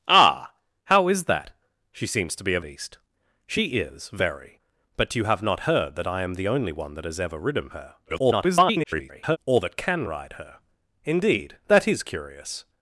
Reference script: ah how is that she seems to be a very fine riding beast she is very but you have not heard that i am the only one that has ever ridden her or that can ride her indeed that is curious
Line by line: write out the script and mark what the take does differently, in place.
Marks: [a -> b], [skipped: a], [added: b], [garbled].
ah how is that she seems to be a [skipped: very fine riding] beast she is very but you have not heard that i am the only one that has ever ridden her [garbled] or that can ride her indeed that is curious